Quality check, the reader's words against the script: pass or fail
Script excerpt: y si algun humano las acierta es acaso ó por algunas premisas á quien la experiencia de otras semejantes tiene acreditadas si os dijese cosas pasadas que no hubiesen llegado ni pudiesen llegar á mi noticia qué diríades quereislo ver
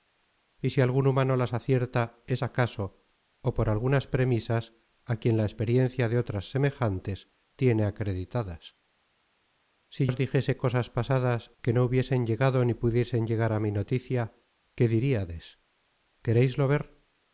pass